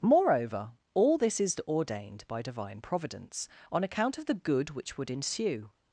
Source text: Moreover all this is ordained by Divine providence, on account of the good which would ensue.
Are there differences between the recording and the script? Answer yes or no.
no